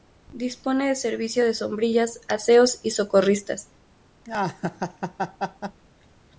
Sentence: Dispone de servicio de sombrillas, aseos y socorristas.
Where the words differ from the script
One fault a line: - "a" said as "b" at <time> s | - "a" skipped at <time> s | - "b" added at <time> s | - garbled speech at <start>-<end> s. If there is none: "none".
none